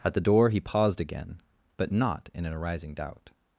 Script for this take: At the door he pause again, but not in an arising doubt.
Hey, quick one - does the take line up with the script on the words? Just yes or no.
no